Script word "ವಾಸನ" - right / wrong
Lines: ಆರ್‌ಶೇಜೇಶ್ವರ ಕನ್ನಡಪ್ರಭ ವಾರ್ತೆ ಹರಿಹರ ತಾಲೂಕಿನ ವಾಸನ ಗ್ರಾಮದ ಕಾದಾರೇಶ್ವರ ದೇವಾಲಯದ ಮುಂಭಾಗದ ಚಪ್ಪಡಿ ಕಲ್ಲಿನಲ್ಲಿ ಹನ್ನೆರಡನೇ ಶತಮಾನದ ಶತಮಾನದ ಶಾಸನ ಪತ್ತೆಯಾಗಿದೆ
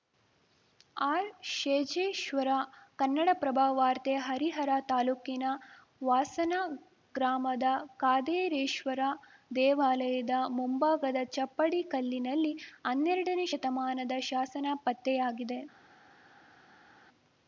right